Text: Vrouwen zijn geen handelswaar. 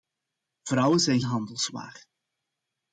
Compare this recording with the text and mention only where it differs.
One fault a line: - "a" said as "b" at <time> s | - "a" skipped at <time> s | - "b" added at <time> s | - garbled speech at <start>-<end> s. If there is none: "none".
- "geen" skipped at 1.2 s